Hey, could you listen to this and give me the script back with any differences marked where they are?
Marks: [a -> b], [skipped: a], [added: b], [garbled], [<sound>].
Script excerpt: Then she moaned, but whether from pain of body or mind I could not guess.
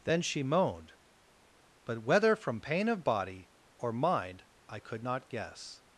Then she moaned, but whether from pain of body or mind I could not guess.